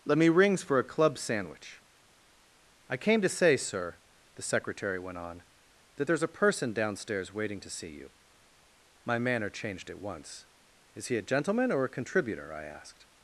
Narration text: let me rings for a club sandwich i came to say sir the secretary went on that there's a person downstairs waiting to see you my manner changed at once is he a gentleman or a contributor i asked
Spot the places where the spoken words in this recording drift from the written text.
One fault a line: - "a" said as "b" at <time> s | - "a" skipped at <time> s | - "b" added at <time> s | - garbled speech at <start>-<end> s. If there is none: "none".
none